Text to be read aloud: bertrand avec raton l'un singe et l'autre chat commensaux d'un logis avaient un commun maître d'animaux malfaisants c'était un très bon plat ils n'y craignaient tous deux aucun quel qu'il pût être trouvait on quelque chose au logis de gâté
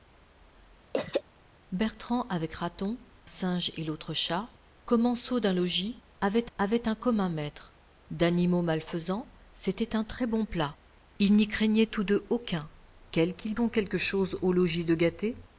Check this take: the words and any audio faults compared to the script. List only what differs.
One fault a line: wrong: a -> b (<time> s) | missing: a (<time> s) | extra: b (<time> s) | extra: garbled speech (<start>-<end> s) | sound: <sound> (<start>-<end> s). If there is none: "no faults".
sound: throat clearing (0.9-1.2 s)
missing: l'un (3.0 s)
extra: avaient (6.6 s)
missing: pût être trouvait (13.5 s)